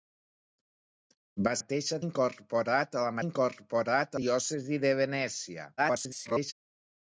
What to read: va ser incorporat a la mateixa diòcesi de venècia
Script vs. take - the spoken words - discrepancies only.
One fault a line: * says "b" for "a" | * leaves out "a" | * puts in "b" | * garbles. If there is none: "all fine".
* says "mateixa" for "ser"
* says "incorporat" for "mateixa"
* garbles